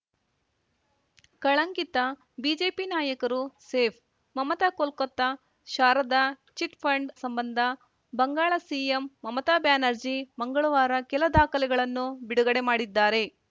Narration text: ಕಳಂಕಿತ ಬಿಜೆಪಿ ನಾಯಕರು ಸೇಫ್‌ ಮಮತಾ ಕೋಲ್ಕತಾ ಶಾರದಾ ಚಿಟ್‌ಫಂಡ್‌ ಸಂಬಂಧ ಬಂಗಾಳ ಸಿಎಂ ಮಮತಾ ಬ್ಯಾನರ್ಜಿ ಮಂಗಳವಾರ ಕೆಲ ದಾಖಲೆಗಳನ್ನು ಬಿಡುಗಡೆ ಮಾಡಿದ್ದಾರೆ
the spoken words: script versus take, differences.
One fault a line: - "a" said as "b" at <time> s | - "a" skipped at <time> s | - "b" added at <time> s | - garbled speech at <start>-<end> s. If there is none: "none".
none